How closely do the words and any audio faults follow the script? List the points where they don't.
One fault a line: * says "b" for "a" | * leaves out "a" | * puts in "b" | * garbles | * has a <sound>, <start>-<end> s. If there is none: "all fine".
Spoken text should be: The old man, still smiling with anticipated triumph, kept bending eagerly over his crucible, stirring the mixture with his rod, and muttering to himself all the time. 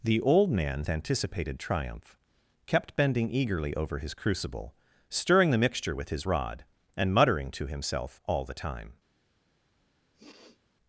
* leaves out "still smiling with"
* has a sniff, 10.1-10.6 s